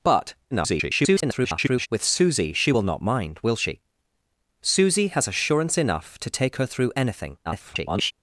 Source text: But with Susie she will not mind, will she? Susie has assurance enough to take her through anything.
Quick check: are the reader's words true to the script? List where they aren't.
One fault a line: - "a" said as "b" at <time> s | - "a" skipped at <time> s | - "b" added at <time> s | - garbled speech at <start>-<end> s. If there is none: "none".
- garbled speech at 0.5-1.9 s
- garbled speech at 7.5-8.1 s